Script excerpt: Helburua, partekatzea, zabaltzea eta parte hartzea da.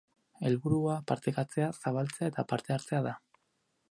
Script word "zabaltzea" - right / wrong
right